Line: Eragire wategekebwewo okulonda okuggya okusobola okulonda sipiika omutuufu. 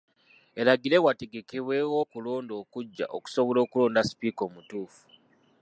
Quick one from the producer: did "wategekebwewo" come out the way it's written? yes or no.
yes